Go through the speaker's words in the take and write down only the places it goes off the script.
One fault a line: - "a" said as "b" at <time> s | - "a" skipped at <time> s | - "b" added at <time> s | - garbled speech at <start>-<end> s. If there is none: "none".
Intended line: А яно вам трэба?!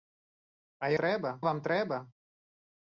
- "яно" said as "трэба" at 1.0 s